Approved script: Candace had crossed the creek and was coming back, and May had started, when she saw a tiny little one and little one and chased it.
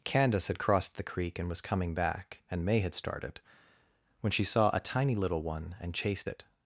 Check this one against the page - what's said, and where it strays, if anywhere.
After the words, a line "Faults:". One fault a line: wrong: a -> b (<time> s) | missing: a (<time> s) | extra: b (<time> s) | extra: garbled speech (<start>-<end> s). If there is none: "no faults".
Candace had crossed the creek and was coming back, and May had started, when she saw a tiny little one and chased it.
Faults:
missing: little one and (5.9 s)